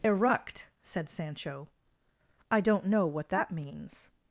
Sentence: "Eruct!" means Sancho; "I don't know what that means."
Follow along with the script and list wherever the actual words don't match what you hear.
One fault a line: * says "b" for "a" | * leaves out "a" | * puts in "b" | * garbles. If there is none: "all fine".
* says "said" for "means"